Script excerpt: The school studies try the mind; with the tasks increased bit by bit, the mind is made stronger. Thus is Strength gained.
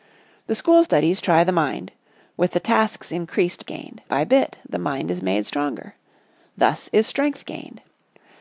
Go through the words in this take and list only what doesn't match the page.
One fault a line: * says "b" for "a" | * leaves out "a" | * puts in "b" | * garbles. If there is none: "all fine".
* says "gained" for "bit"